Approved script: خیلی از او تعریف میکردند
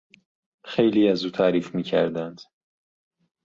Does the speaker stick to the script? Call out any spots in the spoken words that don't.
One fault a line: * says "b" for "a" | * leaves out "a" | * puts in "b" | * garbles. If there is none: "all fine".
all fine